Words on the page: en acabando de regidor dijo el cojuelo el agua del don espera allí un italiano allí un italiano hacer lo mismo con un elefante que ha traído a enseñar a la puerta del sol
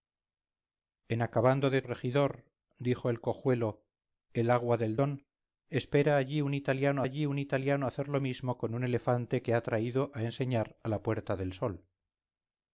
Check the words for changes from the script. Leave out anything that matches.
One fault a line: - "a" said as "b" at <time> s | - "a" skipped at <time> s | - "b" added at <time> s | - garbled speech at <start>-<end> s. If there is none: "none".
none